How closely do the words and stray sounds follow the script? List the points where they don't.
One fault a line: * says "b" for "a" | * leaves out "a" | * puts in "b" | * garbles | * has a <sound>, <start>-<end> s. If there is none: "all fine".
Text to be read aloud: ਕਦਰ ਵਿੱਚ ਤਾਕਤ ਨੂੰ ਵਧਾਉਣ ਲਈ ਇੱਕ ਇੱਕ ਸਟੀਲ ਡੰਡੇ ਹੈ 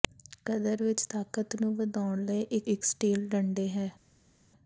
all fine